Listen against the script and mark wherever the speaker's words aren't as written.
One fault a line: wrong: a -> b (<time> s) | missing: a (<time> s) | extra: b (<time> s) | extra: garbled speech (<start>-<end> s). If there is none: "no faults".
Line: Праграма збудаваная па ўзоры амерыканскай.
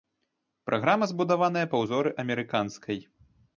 no faults